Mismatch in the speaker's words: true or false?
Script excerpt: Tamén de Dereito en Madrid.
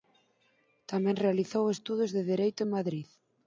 true